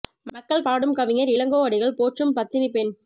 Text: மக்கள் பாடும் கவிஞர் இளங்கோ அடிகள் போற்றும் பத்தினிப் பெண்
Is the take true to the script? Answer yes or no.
yes